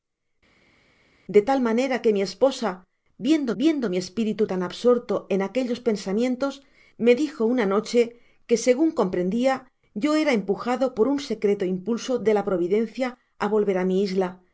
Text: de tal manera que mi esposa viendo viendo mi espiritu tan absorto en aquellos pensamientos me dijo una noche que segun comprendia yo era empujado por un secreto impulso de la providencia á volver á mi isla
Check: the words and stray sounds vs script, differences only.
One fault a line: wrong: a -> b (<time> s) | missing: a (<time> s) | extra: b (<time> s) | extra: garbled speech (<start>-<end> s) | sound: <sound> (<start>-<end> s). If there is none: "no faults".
no faults